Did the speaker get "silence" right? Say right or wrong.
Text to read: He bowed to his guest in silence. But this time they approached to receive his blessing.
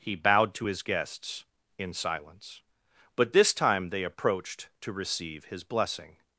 right